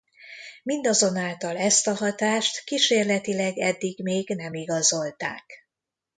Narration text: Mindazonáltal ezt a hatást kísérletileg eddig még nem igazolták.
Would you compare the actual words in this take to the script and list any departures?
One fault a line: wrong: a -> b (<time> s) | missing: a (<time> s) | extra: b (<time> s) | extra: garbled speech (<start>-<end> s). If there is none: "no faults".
no faults